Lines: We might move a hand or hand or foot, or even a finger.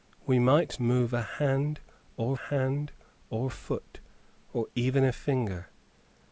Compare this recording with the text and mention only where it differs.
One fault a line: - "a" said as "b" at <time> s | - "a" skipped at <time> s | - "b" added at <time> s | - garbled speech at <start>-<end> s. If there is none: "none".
none